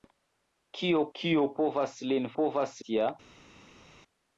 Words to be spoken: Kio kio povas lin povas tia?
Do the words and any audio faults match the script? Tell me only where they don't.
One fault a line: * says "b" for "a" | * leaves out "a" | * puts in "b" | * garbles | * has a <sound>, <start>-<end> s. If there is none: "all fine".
all fine